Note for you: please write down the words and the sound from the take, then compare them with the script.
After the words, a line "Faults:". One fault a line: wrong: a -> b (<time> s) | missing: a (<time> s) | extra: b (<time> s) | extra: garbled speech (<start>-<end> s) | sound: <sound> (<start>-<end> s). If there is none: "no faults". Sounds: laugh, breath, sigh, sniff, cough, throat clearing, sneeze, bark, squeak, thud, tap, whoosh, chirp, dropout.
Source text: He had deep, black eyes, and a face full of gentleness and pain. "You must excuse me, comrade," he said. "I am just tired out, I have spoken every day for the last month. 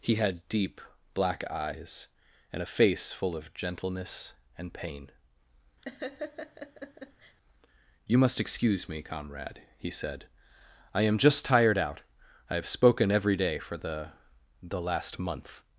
He had deep, black eyes, and a face full of gentleness and pain. "You must excuse me, comrade," he said. "I am just tired out, I have spoken every day for the the last month.
Faults:
sound: laugh (5.8-7.4 s)
extra: the (14.6 s)